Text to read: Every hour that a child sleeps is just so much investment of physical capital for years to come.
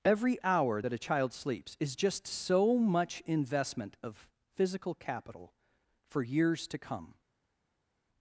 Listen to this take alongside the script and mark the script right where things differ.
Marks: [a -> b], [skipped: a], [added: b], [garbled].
Every hour that a child sleeps is just so much investment of physical capital for years to come.